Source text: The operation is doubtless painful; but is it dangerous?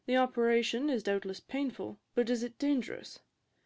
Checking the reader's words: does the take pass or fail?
pass